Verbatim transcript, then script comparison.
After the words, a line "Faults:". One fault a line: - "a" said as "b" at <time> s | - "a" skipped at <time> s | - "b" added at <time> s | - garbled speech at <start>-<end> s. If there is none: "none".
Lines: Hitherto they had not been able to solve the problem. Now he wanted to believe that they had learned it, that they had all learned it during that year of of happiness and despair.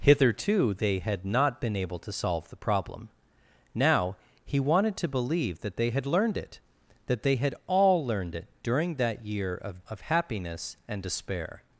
Hitherto they had not been able to solve the problem. Now he wanted to believe that they had learned it, that they had all learned it during that year of of happiness and despair.
Faults:
none